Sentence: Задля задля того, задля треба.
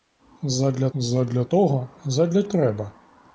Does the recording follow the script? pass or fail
pass